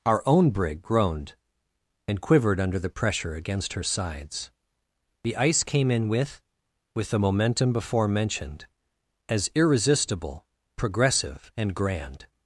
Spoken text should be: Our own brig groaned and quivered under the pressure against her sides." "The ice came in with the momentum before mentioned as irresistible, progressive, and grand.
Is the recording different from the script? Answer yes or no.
yes